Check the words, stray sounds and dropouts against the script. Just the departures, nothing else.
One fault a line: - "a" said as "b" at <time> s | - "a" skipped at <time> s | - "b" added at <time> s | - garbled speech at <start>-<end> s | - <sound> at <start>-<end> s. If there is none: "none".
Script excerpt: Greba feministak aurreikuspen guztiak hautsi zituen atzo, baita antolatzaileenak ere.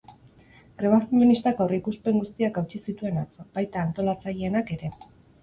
none